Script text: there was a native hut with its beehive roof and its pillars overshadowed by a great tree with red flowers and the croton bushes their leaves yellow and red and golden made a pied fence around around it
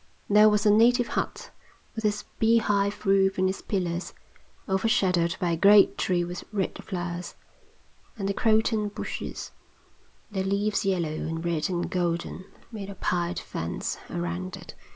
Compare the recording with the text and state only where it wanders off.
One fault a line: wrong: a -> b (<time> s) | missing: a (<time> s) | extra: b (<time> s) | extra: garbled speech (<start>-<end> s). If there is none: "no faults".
missing: around (14.6 s)